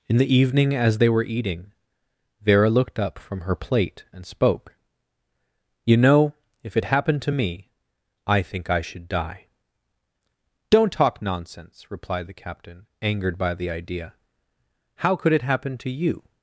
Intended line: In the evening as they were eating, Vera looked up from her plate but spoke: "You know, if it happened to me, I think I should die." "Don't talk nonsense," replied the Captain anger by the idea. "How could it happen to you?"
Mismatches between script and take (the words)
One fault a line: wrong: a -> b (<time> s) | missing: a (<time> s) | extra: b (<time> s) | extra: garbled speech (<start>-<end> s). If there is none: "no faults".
wrong: but -> and (4.1 s)
wrong: anger -> angered (13.0 s)